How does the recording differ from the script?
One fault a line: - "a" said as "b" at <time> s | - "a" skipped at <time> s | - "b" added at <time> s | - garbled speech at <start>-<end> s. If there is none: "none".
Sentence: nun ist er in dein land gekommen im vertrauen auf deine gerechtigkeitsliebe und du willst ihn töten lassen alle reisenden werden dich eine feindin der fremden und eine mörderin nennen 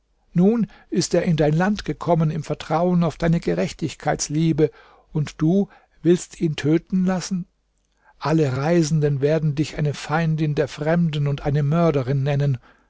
none